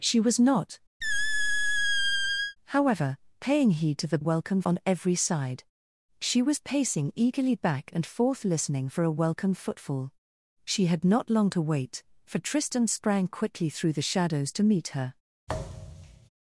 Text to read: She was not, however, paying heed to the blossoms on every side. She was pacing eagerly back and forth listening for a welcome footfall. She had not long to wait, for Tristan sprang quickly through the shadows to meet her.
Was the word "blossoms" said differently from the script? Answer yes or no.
yes